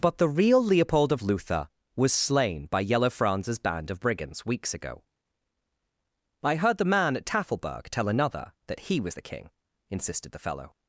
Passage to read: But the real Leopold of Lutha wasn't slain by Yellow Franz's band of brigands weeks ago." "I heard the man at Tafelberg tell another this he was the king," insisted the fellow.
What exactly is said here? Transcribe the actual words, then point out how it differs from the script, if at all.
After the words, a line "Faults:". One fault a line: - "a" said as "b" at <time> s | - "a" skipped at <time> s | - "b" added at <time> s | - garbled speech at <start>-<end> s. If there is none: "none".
But the real Leopold of Lutha was slain by Yellow Franz's band of brigands weeks ago." "I heard the man at Tafelberg tell another that he was the king," insisted the fellow.
Faults:
- "wasn't" said as "was" at 1.9 s
- "this" said as "that" at 8.7 s